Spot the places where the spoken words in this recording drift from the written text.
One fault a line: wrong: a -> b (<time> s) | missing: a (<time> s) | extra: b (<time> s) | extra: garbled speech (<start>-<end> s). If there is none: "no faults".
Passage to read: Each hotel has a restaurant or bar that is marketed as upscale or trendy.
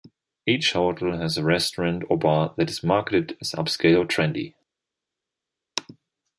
no faults